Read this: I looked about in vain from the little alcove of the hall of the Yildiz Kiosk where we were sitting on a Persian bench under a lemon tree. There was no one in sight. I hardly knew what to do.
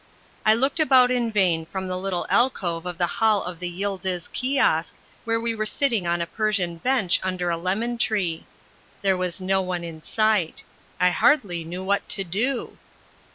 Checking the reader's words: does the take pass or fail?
pass